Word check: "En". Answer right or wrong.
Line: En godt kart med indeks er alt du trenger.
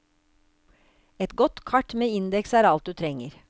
wrong